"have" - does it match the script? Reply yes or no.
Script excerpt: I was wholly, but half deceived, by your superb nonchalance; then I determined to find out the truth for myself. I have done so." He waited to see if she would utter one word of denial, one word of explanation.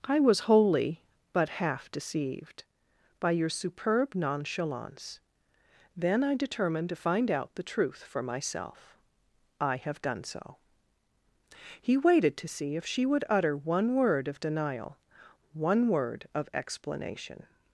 yes